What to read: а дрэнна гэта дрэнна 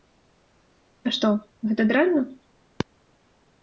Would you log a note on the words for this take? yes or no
yes